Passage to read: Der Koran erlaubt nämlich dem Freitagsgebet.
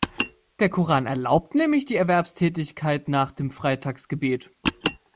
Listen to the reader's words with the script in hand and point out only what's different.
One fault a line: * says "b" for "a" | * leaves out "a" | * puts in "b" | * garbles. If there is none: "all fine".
* puts in "die Erwerbstätigkeit nach"